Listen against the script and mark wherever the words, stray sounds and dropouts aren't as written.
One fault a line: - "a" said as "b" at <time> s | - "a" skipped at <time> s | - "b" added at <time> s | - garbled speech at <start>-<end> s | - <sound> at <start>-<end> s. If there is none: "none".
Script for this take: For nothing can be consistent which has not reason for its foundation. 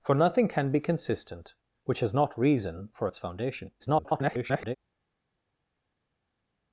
- garbled speech at 3.8-4.8 s